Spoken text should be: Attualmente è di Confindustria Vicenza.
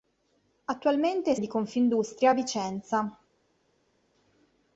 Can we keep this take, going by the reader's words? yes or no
yes